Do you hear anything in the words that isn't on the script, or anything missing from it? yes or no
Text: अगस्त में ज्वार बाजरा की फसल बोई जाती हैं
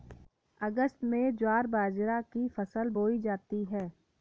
no